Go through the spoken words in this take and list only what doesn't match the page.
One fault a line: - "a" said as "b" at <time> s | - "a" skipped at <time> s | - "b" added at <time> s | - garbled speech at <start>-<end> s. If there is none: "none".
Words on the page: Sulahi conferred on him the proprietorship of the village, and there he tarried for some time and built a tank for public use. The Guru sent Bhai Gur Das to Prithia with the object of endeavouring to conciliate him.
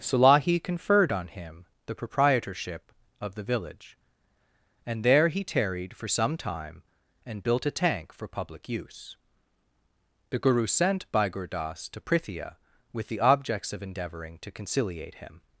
- "object" said as "objects" at 13.2 s